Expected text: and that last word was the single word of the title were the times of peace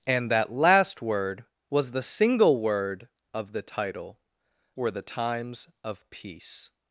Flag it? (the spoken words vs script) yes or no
no